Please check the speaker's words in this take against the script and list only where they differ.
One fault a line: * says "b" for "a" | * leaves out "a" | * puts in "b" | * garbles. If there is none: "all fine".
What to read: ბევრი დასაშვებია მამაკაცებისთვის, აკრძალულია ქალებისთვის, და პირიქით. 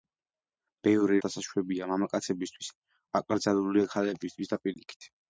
all fine